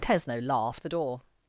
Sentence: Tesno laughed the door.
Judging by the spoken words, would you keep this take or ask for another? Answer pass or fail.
pass